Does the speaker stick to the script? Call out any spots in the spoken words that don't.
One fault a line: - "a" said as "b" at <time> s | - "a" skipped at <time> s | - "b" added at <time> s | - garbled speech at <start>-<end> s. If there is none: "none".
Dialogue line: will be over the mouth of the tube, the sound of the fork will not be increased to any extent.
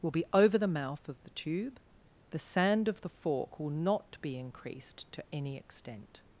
- "sound" said as "sand" at 2.4 s